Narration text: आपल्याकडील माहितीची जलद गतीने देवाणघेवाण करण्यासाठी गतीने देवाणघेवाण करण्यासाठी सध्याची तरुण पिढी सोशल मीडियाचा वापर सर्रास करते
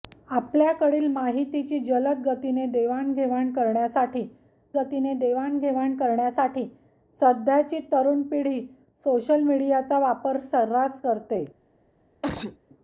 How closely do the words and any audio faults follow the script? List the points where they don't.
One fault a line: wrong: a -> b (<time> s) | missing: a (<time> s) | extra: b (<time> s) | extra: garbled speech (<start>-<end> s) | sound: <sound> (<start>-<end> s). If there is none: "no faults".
sound: sneeze (12.2-12.6 s)